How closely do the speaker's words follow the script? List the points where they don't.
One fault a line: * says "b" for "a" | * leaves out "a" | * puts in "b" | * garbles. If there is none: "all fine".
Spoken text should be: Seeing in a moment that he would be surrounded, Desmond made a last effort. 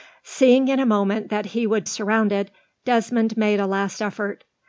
* leaves out "be"